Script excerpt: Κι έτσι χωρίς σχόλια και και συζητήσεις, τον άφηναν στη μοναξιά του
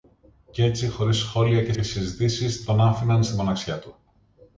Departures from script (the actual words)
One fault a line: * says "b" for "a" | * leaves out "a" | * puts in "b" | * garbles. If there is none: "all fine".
all fine